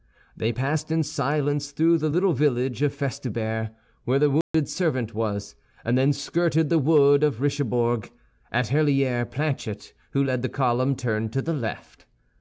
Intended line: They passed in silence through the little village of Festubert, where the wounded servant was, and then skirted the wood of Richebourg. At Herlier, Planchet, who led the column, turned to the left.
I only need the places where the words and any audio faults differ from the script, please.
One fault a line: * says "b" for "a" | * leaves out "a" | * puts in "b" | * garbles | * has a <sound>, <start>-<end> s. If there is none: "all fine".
* has a dropout, 4.4-4.5 s